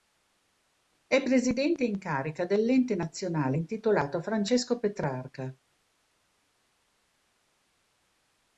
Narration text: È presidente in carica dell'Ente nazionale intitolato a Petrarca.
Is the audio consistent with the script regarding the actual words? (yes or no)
no